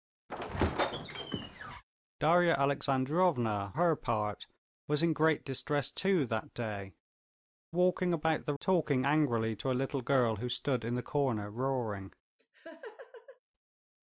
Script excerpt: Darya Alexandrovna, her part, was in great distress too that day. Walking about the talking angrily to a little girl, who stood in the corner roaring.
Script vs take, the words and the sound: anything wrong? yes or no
yes